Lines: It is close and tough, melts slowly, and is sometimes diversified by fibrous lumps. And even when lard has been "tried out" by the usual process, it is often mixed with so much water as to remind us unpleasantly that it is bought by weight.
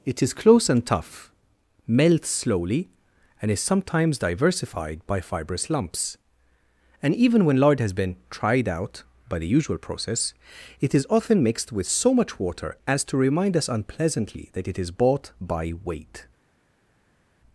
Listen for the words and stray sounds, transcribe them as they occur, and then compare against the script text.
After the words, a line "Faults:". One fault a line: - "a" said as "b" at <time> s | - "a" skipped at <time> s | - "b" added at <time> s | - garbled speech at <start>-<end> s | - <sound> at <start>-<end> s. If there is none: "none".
It is close and tough, melts slowly, and is sometimes diversified by fibrous lumps. And even when lard has been "tried out" by the usual process, it is often mixed with so much water as to remind us unpleasantly that it is bought by weight.
Faults:
none